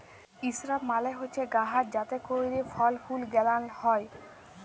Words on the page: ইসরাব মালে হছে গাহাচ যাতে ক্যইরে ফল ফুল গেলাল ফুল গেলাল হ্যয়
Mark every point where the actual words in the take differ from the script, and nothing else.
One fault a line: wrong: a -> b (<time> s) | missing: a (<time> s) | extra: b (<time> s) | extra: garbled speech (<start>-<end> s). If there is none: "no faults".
missing: ফুল গেলাল (3.6 s)